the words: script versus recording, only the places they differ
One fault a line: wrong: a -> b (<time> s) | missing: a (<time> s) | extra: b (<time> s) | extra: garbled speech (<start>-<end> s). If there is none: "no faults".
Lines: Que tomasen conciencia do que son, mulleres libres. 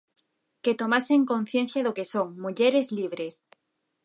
no faults